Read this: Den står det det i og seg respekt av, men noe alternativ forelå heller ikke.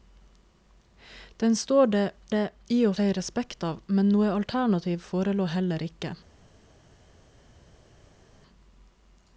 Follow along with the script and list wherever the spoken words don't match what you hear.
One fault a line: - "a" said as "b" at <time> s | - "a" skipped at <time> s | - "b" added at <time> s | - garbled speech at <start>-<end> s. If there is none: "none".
none